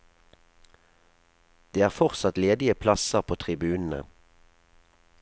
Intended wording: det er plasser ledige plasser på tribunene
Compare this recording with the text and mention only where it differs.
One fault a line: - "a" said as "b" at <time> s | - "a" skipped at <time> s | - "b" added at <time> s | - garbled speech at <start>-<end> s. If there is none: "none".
- "plasser" said as "fortsatt" at 1.9 s